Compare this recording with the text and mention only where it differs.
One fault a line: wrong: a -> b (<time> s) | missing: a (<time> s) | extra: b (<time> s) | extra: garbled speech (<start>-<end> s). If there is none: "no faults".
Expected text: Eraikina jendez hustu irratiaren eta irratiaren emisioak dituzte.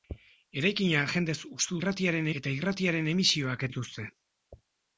no faults